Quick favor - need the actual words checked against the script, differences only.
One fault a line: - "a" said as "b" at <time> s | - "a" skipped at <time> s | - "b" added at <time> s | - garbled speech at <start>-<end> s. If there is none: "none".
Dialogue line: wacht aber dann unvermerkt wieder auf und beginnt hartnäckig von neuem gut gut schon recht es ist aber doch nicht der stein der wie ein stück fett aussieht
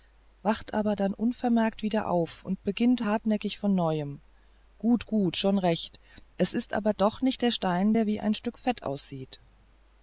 none